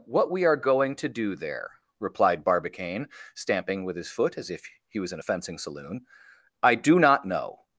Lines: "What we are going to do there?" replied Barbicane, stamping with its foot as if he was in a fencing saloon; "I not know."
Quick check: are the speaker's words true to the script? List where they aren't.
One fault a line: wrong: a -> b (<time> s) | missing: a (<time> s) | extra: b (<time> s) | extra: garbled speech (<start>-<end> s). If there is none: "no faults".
wrong: its -> his (4.0 s)
extra: do (6.7 s)